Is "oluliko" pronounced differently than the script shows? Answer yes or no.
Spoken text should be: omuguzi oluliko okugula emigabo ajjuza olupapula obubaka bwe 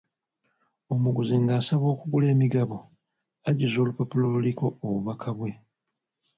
yes